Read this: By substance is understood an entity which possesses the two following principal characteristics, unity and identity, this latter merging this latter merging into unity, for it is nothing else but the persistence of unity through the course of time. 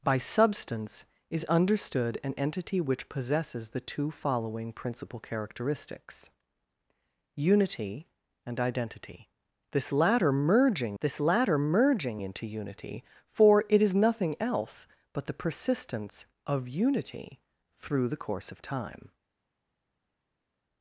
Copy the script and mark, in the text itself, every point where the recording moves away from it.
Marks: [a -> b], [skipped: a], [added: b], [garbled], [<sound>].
By substance is understood an entity which possesses the two following principal characteristics, unity and identity, this latter merging this latter merging into unity, for it is nothing else but the persistence of unity through the course of time.